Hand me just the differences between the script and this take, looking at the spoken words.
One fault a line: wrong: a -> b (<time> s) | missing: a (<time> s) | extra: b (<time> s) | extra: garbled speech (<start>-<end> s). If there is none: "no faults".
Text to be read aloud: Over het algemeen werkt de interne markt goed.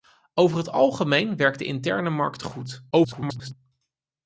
extra: garbled speech (2.9-3.5 s)